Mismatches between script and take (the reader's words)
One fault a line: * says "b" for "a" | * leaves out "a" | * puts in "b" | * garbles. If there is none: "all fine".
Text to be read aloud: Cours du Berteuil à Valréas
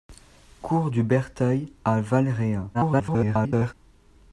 * garbles